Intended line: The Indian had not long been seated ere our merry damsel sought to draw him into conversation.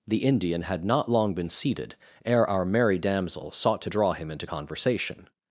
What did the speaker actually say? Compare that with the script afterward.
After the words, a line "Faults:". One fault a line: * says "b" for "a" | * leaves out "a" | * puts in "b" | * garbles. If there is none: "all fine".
The Indian had not long been seated ere our merry damsel sought to draw him into conversation.
Faults:
all fine